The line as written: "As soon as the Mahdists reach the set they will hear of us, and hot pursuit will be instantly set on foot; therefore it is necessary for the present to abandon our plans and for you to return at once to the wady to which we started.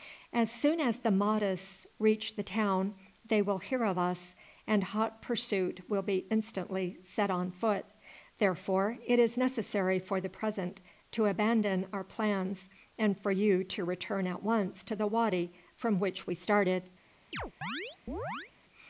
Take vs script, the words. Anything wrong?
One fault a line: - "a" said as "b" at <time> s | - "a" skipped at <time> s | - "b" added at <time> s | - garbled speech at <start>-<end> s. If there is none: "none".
- "set" said as "town" at 2.4 s
- "to" said as "from" at 15.8 s